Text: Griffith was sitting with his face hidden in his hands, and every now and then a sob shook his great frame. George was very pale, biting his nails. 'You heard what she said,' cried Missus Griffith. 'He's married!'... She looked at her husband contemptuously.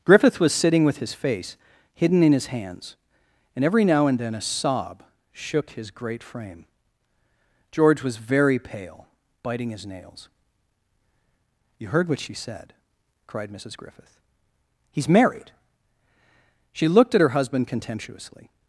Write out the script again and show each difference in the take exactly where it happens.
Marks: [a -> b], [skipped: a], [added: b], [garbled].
Griffith was sitting with his face hidden in his hands, and every now and then a sob shook his great frame. George was very pale, biting his nails. 'You heard what she said,' cried Missus Griffith. 'He's married!'... She looked at her husband contemptuously.